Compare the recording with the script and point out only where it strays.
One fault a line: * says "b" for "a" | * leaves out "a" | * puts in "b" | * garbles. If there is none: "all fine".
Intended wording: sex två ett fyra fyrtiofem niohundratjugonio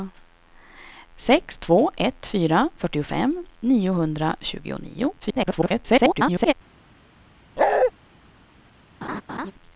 * garbles